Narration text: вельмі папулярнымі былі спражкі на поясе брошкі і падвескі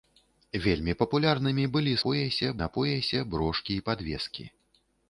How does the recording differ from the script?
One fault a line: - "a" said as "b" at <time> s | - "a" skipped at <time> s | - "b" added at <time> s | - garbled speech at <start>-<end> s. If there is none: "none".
- "спражкі" said as "поясе" at 2.1 s